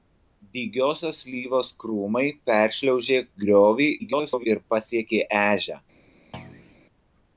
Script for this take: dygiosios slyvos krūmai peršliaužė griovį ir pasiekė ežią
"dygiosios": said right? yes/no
yes